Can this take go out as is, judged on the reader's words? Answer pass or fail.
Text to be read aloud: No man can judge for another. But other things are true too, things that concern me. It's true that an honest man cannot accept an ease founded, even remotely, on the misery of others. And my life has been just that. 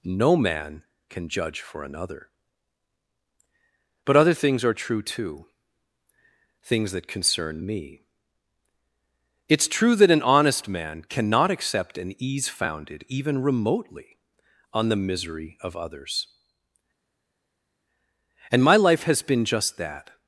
pass